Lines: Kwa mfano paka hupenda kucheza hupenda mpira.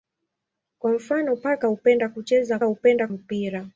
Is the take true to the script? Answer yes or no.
yes